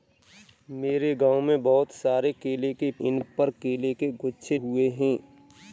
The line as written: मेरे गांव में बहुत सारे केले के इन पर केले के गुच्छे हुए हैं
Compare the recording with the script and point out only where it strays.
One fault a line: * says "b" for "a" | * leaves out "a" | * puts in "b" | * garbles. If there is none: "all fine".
all fine